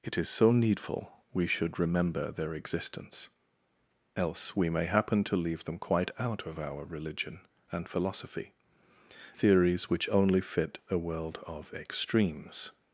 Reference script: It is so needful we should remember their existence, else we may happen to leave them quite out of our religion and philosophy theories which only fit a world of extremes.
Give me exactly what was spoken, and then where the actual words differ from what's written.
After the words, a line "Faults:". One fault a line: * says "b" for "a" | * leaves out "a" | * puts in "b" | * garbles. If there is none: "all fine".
It is so needful we should remember their existence, else we may happen to leave them quite out of our religion and philosophy theories which only fit a world of extremes.
Faults:
all fine